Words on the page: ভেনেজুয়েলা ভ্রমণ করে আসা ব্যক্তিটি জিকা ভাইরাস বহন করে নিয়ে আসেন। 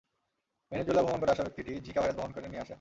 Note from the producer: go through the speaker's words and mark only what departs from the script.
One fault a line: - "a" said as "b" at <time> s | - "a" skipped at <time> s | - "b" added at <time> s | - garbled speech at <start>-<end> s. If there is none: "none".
none